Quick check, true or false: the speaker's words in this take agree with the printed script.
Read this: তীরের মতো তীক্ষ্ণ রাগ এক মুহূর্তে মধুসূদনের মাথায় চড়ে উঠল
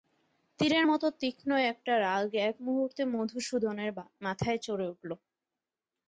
false